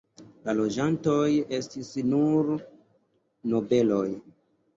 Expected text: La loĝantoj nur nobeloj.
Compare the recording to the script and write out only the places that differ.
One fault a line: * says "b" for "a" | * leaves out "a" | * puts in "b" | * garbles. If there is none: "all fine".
* puts in "estis"